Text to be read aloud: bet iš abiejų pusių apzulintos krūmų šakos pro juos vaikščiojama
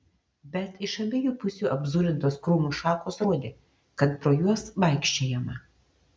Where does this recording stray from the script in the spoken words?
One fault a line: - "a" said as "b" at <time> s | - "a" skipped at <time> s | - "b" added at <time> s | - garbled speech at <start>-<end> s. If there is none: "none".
- "rodė kad" added at 3.3 s